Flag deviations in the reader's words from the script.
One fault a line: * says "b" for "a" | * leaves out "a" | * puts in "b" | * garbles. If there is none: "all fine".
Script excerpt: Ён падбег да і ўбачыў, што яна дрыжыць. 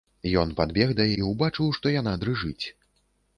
all fine